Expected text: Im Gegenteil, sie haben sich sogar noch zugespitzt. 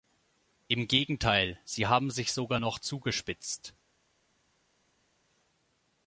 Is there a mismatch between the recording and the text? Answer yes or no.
no